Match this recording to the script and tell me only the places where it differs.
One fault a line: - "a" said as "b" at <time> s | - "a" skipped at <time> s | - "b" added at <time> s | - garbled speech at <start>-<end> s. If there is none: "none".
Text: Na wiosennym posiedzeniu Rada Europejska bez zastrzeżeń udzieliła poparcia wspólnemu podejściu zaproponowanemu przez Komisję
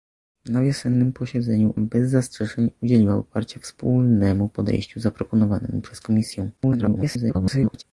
- "Rada Europejska" skipped at 1.7 s
- garbled speech at 6.6-7.8 s